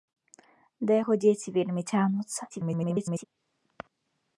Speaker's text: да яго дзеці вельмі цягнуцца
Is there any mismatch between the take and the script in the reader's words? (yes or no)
yes